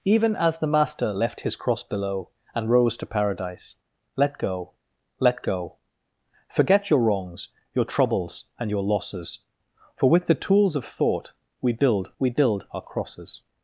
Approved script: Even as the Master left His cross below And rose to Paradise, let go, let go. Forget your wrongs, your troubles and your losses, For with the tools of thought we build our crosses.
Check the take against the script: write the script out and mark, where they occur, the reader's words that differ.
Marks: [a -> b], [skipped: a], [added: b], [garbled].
Even as the Master left His cross below And rose to Paradise, let go, let go. Forget your wrongs, your troubles and your losses, For with the tools of thought we build [added: we build] our crosses.